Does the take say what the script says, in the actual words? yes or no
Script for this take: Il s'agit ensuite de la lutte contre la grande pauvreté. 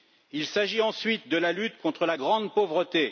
yes